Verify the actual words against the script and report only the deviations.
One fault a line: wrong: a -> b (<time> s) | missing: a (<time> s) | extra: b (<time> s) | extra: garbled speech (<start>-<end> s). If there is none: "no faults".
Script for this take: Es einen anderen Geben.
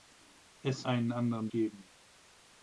no faults